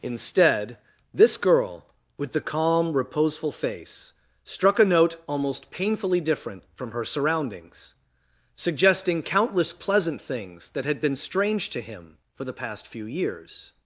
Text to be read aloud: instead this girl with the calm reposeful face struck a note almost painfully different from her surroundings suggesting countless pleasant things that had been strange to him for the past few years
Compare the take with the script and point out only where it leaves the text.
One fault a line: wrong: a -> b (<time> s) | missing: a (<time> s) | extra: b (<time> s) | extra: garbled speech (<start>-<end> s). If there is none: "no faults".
no faults